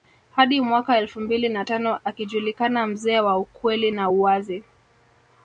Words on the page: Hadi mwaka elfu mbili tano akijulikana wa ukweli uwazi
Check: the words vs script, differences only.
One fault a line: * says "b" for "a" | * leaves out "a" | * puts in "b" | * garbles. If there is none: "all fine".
* puts in "na"
* puts in "mzee"
* puts in "na"